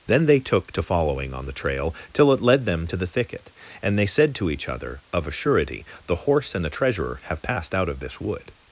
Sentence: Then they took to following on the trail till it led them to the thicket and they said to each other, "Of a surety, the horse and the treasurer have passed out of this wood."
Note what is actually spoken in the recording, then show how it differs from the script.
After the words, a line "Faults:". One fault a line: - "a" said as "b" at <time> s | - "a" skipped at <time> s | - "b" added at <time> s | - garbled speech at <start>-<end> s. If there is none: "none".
Then they took to following on the trail till it led them to the thicket and they said to each other, "Of a surety, the horse and the treasurer have passed out of this wood."
Faults:
none